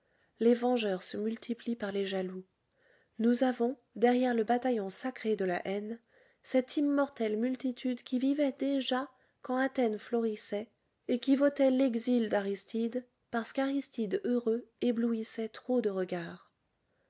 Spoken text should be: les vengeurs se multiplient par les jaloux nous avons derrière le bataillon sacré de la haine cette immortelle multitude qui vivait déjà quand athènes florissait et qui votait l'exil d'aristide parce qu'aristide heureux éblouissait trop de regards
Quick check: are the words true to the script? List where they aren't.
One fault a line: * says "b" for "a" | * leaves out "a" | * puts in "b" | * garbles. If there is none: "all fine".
all fine